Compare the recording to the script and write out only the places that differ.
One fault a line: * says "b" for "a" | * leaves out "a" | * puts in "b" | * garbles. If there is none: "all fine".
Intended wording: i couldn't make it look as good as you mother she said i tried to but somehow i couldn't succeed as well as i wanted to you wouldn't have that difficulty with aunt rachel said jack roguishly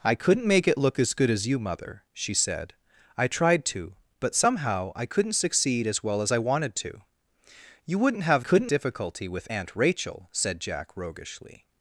* says "couldn't" for "that"